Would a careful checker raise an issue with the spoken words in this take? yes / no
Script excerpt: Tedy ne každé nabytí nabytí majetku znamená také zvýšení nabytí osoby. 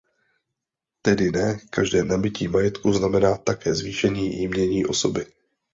yes